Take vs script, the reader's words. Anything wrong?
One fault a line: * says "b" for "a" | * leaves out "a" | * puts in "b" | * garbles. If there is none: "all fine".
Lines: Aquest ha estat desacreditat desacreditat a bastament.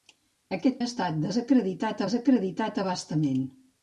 all fine